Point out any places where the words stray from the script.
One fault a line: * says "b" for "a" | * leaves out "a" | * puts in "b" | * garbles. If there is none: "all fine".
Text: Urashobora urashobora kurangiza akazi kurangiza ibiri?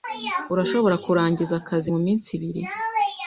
* leaves out "urashobora"
* says "muminsi" for "kurangiza"